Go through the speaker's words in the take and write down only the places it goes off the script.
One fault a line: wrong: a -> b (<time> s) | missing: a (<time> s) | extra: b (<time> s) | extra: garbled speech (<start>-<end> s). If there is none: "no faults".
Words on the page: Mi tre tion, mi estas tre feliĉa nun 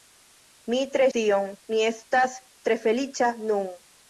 no faults